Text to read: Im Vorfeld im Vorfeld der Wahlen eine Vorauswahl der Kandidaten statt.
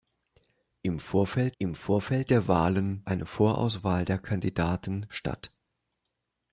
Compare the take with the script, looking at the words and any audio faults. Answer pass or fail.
pass